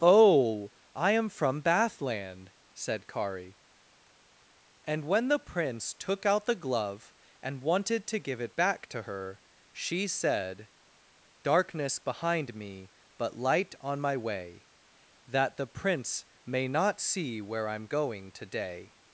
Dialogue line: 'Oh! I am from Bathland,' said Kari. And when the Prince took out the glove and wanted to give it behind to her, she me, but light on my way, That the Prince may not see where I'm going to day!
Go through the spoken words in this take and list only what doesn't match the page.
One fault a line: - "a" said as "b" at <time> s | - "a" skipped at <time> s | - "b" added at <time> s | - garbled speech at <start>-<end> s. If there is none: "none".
- "behind" said as "back" at 8.6 s
- "said Darkness behind" added at 10.1 s